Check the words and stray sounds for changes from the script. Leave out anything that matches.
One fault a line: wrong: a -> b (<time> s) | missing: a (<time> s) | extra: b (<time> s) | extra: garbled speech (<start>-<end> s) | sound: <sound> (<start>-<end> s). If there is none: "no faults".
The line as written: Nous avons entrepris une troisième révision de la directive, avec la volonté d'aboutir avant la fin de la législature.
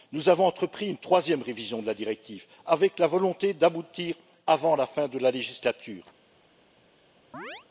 sound: chirp (7.3-7.7 s)